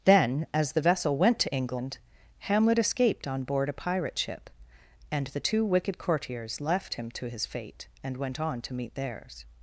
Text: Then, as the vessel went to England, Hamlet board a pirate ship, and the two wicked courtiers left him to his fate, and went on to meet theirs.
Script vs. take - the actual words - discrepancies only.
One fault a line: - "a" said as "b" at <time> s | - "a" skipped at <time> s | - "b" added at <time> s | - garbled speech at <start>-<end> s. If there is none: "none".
- "escaped on" added at 2.8 s